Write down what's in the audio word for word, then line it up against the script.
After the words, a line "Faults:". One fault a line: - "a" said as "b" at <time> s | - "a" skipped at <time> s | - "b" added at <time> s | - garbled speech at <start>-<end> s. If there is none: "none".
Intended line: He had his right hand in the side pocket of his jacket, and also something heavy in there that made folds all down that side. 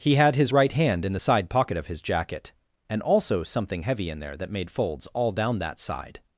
He had his right hand in the side pocket of his jacket, and also something heavy in there that made folds all down that side.
Faults:
none